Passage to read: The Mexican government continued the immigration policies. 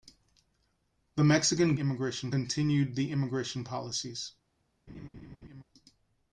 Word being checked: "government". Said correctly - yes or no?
no